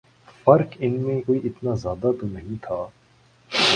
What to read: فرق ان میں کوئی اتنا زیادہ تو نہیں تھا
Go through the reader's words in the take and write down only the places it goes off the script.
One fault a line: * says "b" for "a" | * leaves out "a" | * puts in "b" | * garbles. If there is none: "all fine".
all fine